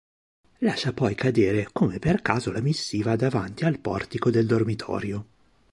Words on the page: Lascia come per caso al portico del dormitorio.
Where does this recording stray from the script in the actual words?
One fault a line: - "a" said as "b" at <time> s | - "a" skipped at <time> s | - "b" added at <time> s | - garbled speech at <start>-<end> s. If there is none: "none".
- "poi cadere" added at 0.9 s
- "la missiva davanti" added at 2.5 s